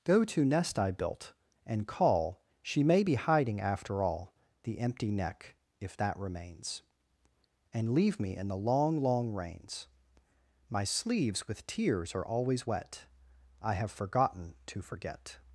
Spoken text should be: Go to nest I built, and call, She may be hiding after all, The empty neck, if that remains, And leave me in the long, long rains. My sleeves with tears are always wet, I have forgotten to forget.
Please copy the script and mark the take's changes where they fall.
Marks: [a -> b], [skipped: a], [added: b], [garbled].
Go to nest I built, and call, She may be hiding after all, The empty neck, if that remains, And leave me in the long, long rains. My sleeves with tears are always wet, I have forgotten to forget.